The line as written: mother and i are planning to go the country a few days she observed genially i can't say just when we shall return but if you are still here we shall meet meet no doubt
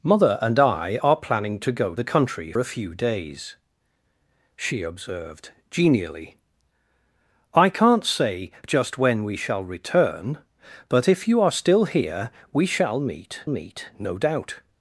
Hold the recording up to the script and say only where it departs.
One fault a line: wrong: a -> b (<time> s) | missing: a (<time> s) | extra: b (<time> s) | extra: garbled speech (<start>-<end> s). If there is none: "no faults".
no faults